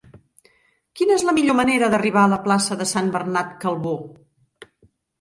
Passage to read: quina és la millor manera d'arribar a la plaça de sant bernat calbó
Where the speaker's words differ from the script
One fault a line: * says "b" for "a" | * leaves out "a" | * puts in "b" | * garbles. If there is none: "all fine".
all fine